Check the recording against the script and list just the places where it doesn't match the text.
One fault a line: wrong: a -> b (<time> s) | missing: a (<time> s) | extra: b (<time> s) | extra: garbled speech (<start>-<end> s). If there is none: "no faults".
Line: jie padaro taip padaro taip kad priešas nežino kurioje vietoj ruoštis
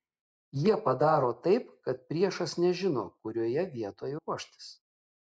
missing: padaro taip (1.7 s)